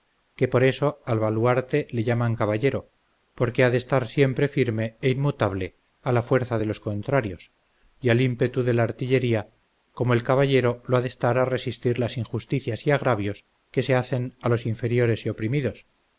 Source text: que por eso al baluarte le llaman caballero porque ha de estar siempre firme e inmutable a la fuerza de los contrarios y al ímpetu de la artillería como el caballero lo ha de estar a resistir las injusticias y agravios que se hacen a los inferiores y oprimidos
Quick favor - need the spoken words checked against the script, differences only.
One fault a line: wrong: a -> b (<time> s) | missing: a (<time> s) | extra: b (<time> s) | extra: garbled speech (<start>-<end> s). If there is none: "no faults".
no faults